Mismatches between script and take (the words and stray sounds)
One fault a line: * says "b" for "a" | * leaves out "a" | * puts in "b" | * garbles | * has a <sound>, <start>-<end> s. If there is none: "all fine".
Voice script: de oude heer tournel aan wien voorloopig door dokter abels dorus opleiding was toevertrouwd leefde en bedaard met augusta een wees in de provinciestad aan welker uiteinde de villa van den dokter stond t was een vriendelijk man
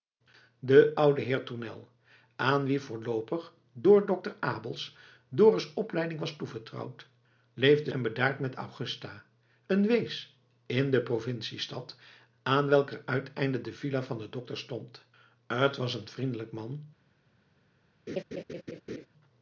* has a laugh, 18.1-19.1 s